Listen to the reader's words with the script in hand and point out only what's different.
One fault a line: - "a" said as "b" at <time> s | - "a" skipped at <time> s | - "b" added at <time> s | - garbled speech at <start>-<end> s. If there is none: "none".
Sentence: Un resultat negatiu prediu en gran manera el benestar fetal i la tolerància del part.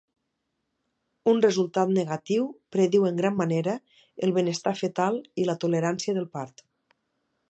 none